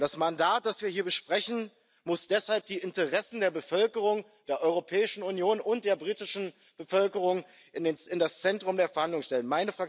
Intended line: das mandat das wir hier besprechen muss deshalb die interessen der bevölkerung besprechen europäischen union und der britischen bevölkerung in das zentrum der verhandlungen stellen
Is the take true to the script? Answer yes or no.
no